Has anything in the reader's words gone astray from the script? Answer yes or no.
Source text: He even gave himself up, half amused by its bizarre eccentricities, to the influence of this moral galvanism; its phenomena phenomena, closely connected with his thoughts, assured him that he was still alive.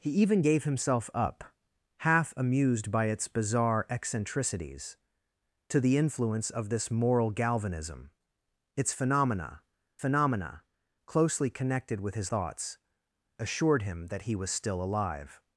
no